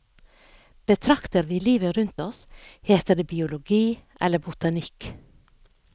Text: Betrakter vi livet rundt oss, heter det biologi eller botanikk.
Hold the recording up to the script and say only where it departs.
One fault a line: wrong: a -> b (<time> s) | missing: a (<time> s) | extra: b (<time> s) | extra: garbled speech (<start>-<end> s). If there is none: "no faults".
no faults